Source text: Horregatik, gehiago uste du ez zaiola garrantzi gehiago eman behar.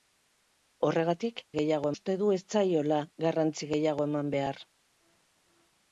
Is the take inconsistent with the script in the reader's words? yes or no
no